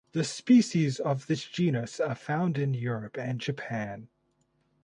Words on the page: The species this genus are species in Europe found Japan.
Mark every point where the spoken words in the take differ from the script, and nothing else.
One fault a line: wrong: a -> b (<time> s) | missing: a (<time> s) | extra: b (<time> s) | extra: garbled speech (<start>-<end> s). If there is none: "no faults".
extra: of (1.0 s)
wrong: species -> found (2.2 s)
wrong: found -> and (3.2 s)